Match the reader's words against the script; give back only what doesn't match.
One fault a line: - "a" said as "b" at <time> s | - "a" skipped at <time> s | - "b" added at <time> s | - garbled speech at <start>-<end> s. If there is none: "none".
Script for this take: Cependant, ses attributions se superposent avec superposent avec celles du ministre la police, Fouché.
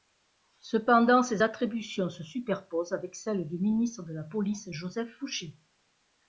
- "superposent avec" skipped at 3.2 s
- "de" added at 4.0 s
- "Joseph" added at 4.7 s